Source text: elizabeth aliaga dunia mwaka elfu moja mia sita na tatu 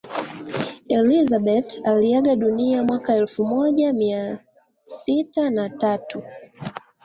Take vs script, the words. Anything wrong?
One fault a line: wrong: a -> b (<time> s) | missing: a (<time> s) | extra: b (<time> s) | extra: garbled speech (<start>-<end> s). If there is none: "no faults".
no faults